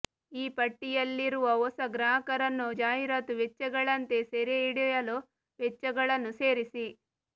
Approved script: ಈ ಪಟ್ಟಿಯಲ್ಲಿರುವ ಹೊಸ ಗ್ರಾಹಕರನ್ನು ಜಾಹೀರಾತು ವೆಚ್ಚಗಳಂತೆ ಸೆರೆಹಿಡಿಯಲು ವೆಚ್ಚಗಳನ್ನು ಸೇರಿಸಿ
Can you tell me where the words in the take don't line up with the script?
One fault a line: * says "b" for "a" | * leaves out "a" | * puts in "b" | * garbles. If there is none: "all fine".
all fine